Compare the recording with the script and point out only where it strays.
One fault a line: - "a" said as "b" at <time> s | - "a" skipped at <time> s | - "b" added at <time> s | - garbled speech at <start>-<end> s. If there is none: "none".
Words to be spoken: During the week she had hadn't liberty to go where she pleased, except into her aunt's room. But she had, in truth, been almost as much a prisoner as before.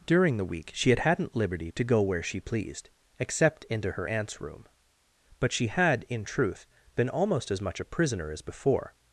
none